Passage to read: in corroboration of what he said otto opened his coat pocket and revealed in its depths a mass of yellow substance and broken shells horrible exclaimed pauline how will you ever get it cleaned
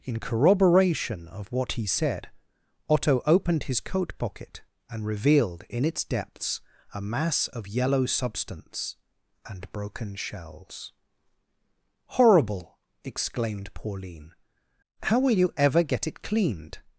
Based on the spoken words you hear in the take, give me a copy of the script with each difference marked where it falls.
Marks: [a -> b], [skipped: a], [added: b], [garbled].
in corroboration of what he said otto opened his coat pocket and revealed in its depths a mass of yellow substance and broken shells horrible exclaimed pauline how will you ever get it cleaned